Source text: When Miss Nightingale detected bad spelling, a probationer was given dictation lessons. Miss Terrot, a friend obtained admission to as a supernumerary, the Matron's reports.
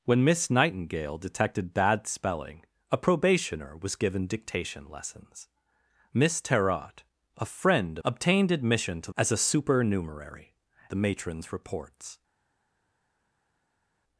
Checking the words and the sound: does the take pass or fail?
pass